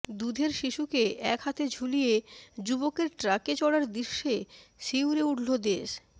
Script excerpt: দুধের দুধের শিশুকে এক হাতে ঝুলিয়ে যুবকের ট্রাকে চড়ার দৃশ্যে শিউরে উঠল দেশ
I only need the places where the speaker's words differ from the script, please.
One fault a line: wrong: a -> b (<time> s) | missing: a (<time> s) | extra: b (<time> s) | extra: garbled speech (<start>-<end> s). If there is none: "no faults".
missing: দুধের (0.5 s)